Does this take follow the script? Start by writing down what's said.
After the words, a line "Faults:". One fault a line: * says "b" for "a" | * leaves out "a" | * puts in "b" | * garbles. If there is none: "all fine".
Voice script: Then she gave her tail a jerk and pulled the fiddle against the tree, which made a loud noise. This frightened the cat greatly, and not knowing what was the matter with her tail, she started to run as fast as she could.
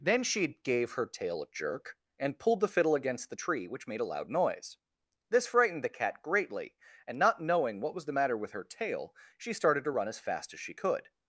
Then she gave her tail a jerk and pulled the fiddle against the tree, which made a loud noise. This frightened the cat greatly, and not knowing what was the matter with her tail, she started to run as fast as she could.
Faults:
all fine